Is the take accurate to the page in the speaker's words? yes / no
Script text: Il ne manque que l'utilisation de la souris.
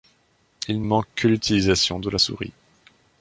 no